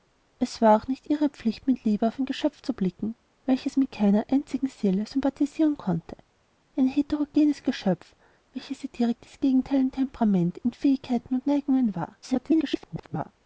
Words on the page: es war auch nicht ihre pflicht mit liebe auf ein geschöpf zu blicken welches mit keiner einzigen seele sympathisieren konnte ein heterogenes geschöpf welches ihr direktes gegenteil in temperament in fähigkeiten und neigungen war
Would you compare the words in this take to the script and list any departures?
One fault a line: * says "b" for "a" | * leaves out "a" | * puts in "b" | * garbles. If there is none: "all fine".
* garbles